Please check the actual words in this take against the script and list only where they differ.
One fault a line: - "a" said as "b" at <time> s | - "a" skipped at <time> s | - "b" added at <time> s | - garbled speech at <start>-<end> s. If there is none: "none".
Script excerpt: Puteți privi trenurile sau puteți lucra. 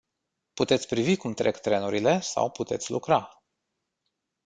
- "cum trec" added at 1.1 s